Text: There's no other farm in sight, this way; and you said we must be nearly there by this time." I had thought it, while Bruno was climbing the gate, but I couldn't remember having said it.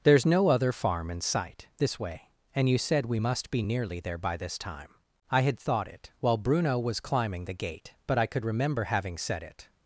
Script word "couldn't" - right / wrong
wrong